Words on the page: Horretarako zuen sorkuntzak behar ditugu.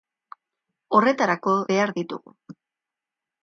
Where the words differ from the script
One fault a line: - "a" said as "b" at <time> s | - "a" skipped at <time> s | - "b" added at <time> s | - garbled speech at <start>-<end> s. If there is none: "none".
- "zuen sorkuntzak" skipped at 1.5 s